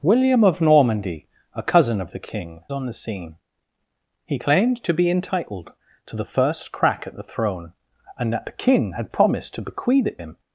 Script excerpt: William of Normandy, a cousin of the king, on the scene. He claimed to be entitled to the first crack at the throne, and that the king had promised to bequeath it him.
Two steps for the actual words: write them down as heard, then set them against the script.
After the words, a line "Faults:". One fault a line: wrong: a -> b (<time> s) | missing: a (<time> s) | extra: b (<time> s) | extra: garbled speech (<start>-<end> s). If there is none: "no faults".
William of Normandy, a cousin of the king, on the scene. He claimed to be entitled to the first crack at the throne, and that the king had promised to bequeath it him.
Faults:
no faults